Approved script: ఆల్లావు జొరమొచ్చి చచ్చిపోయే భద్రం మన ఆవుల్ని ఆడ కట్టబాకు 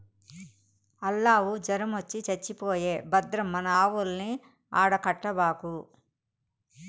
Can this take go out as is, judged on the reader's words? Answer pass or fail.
pass